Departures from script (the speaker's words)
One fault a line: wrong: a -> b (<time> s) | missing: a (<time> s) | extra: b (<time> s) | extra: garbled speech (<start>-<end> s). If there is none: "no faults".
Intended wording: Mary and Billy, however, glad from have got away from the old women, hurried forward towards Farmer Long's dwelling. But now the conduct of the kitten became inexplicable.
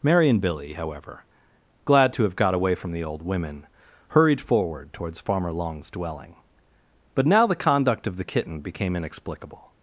wrong: from -> to (2.1 s)